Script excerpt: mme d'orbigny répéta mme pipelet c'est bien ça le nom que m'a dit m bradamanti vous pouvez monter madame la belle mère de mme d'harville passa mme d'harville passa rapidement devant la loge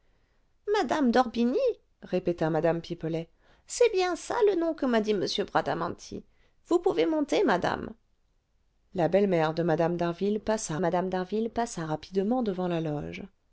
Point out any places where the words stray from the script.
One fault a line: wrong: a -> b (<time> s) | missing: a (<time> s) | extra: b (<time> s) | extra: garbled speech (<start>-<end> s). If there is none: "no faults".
no faults